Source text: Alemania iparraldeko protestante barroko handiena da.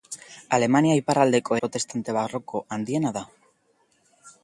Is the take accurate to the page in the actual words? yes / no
yes